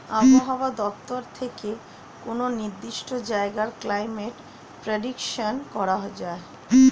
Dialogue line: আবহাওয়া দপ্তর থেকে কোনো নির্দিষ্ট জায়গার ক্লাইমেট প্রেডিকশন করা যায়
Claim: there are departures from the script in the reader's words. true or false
false